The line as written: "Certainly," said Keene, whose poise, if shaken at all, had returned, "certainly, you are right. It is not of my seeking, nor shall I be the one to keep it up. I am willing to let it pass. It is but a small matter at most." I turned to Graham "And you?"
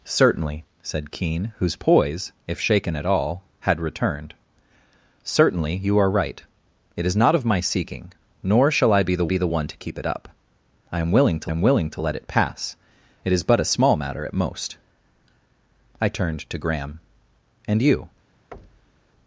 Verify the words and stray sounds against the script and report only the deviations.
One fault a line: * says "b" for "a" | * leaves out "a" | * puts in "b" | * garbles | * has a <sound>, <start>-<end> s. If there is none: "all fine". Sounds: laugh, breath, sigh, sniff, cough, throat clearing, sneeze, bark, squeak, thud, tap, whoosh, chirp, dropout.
* puts in "be the"
* puts in "am willing to"
* has a thud, 18.5-19.1 s